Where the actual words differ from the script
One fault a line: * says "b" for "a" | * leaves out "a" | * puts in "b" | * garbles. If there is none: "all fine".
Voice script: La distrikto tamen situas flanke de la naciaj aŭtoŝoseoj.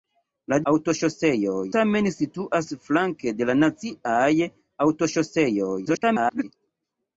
* says "aŭtoŝoseoj" for "distrikto"
* garbles